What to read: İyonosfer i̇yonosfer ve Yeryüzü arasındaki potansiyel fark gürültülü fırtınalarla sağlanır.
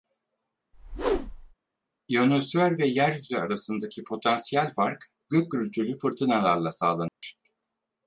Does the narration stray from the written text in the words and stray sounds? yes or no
yes